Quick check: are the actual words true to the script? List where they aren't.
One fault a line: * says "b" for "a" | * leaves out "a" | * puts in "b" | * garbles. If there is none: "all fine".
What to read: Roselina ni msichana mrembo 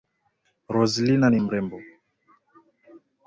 * leaves out "msichana"